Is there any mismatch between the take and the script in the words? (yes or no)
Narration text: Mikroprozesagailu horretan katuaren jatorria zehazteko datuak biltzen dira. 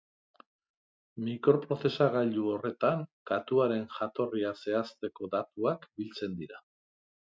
no